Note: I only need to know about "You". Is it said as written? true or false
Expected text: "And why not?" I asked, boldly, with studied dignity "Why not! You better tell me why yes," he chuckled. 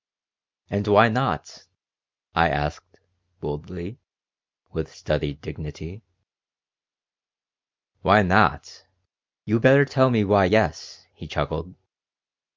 true